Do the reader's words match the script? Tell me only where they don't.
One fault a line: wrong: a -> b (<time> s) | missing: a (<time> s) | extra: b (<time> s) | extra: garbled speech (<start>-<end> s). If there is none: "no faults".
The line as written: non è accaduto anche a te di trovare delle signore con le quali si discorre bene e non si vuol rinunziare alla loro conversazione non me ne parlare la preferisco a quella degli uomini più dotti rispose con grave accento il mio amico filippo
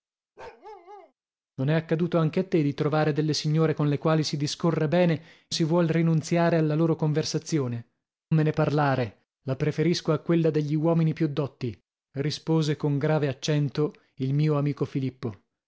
missing: non (5.5 s)
missing: non (7.9 s)